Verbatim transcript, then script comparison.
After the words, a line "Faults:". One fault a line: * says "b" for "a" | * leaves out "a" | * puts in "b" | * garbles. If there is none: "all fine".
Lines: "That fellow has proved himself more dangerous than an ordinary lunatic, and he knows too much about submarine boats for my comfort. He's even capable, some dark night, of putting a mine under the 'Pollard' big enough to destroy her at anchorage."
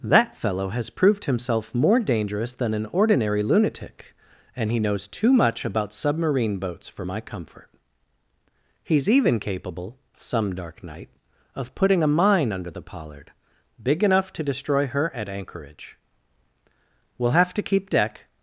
"That fellow has proved himself more dangerous than an ordinary lunatic, and he knows too much about submarine boats for my comfort. He's even capable, some dark night, of putting a mine under the 'Pollard' big enough to destroy her at anchorage." "We'll have to keep deck
Faults:
* puts in "We'll have to keep deck"